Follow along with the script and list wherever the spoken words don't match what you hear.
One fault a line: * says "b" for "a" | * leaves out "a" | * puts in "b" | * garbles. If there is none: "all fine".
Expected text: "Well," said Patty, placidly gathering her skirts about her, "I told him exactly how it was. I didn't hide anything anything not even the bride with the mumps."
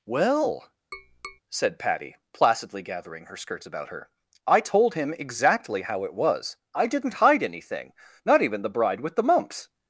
* leaves out "anything"